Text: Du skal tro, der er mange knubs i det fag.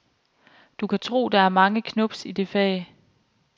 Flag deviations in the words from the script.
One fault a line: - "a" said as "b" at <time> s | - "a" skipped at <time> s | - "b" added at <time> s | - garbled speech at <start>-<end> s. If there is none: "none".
- "skal" said as "kan" at 0.9 s